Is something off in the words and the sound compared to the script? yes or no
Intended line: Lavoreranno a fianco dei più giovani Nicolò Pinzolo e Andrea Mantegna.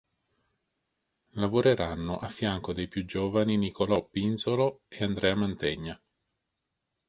no